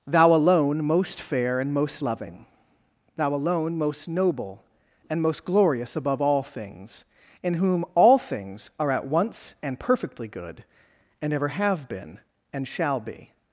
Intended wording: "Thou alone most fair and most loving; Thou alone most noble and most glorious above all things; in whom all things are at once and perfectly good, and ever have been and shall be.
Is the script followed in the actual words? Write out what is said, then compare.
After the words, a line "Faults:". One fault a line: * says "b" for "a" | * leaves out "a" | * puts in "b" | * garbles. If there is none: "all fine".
"Thou alone most fair and most loving; Thou alone most noble and most glorious above all things; in whom all things are at once and perfectly good, and ever have been and shall be.
Faults:
all fine